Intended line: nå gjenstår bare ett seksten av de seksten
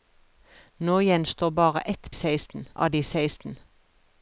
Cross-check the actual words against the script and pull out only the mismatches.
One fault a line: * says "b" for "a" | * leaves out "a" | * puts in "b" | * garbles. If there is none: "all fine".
all fine